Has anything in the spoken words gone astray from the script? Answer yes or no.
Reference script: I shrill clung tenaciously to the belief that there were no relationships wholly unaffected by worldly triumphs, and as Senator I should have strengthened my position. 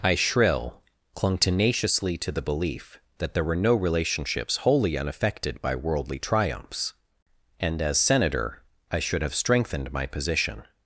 no